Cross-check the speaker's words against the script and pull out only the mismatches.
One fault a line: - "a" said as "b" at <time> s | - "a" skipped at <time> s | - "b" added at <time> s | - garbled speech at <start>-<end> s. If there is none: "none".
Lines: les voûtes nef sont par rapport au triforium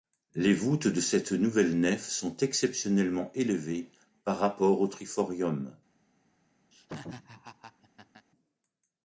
- "de cette nouvelle" added at 0.9 s
- "exceptionnellement élevées" added at 2.4 s